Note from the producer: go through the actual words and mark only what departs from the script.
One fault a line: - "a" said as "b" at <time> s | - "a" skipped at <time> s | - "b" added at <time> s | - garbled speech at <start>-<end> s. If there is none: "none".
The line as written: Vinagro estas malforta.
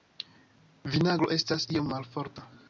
- "iom" added at 1.8 s